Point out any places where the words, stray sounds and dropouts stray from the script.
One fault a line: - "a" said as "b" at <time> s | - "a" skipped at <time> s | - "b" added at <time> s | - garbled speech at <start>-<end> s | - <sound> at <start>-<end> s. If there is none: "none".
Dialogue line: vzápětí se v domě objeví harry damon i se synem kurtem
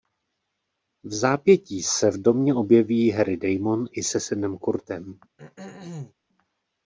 - throat clearing at 5.4-6.1 s